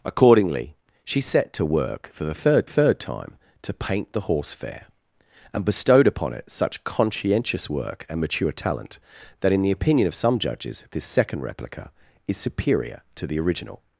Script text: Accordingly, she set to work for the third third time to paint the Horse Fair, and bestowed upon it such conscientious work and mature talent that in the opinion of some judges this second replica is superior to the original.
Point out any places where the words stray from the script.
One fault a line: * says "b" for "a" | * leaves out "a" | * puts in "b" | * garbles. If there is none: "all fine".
all fine